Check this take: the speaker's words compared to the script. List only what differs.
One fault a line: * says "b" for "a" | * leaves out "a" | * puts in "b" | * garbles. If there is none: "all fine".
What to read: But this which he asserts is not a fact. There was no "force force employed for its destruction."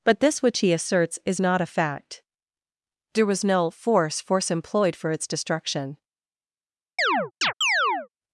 all fine